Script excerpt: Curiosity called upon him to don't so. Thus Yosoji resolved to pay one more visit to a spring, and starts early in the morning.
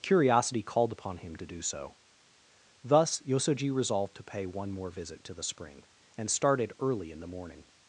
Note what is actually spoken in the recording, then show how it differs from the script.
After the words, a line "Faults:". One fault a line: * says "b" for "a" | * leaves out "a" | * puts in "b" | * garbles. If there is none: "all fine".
Curiosity called upon him to do so. Thus Yosoji resolved to pay one more visit to the spring, and started early in the morning.
Faults:
* says "do" for "don't"
* says "the" for "a"
* says "started" for "starts"